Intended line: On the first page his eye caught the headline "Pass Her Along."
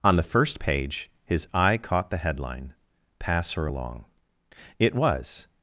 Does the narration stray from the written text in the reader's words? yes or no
yes